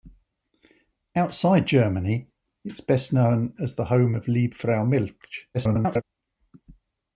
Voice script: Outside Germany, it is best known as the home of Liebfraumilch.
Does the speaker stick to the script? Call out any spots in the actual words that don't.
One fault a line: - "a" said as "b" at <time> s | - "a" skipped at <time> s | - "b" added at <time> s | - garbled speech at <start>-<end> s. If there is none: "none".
- garbled speech at 5.5-6.0 s